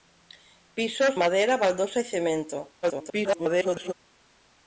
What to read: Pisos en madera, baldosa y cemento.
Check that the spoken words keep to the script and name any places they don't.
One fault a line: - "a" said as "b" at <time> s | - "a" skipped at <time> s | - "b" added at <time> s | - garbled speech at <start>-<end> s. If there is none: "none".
- "en" skipped at 1.2 s
- garbled speech at 2.8-3.9 s